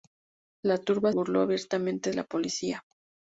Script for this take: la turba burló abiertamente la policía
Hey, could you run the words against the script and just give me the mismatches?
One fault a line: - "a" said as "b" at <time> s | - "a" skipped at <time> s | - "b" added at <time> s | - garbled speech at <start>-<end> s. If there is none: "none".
none